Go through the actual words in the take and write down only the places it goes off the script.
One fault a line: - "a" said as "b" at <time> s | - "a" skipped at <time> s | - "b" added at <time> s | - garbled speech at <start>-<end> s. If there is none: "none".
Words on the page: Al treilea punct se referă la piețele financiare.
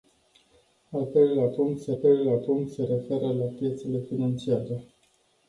- "treilea punct se" added at 1.9 s